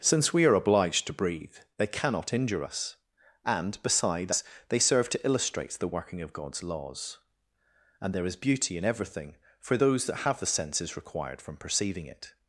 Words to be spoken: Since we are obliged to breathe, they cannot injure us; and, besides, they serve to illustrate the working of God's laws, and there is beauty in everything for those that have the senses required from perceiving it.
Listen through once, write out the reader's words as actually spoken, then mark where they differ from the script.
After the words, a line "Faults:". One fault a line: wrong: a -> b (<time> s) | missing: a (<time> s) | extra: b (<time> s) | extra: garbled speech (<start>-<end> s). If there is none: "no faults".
Since we are obliged to breathe, they cannot injure us; and, besides, they serve to illustrate the working of God's laws, and there is beauty in everything for those that have the senses required from perceiving it.
Faults:
no faults